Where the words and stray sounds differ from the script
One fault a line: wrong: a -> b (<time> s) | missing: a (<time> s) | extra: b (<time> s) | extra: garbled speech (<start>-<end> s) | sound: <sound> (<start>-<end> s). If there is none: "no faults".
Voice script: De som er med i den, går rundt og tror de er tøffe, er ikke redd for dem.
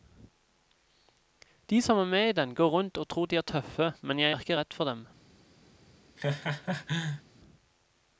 extra: men jeg (4.0 s)
sound: laugh (6.2-7.2 s)